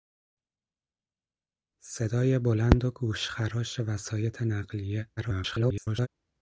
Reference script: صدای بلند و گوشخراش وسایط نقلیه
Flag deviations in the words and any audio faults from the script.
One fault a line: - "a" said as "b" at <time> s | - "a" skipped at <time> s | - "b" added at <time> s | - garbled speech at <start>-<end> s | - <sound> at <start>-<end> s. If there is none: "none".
- garbled speech at 5.2-6.1 s